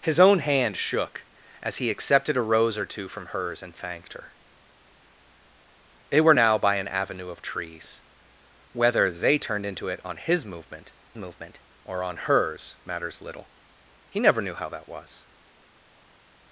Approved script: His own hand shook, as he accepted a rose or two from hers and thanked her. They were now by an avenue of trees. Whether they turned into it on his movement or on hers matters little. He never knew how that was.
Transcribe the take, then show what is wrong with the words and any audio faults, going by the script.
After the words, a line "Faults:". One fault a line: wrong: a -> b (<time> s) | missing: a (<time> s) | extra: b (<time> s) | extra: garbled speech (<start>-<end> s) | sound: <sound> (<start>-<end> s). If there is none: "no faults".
His own hand shook, as he accepted a rose or two from hers and thanked her. They were now by an avenue of trees. Whether they turned into it on his movement movement or on hers matters little. He never knew how that was.
Faults:
extra: movement (11.2 s)